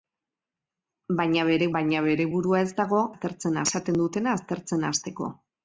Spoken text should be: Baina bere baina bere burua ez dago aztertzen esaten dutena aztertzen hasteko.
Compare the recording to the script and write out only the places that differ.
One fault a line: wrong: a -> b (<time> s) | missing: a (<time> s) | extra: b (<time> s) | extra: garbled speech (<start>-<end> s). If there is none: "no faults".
no faults